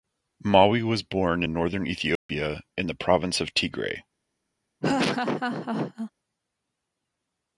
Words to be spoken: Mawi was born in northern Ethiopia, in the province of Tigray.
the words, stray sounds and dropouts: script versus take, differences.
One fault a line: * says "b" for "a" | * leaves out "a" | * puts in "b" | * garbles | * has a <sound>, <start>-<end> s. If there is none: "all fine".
* has a dropout, 2.2-2.3 s
* has a laugh, 4.8-6.1 s